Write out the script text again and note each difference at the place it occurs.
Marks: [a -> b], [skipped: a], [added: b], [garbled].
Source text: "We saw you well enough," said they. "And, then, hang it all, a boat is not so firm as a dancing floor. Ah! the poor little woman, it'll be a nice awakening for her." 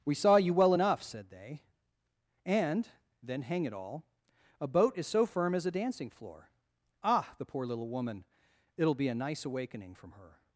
"We saw you well enough," said they. "And, then, hang it all, a boat is [skipped: not] so firm as a dancing floor. Ah! the poor little woman, it'll be a nice awakening [for -> from] her."